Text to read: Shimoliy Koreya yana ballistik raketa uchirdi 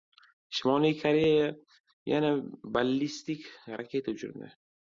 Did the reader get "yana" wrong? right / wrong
right